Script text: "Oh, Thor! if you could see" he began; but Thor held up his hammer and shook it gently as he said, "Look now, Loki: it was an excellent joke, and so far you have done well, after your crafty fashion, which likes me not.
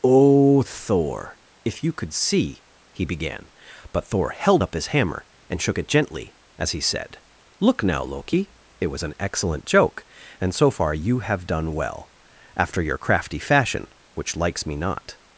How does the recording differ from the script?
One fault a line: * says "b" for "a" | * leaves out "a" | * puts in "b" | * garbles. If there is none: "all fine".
all fine